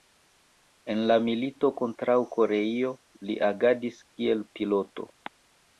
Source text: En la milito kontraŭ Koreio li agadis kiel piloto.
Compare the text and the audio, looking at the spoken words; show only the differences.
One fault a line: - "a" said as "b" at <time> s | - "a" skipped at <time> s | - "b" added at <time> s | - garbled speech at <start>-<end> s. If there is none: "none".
none